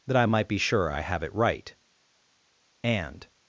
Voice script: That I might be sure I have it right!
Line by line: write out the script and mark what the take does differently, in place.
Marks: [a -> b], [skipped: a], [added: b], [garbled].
That I might be sure I have it right! [added: And]